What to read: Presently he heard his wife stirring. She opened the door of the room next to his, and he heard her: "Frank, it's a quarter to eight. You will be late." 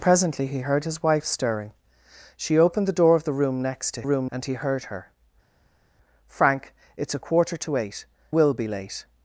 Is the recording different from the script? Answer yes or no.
yes